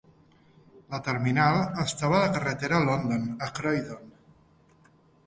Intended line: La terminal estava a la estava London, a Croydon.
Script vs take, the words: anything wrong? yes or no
yes